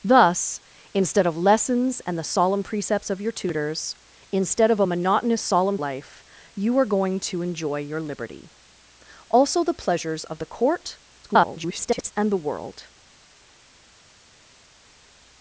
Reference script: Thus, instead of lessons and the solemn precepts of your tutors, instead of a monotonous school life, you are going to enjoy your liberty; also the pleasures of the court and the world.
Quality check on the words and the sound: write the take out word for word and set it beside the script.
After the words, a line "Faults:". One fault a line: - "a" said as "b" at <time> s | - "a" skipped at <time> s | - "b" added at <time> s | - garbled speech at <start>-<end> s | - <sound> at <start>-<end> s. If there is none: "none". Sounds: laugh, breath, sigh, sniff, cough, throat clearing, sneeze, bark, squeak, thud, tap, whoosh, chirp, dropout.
Thus, instead of lessons and the solemn precepts of your tutors, instead of a monotonous solemn life, you are going to enjoy your liberty; also the pleasures of the court [garbled] and the world.
Faults:
- "school" said as "solemn" at 5.4 s
- garbled speech at 11.2-12.1 s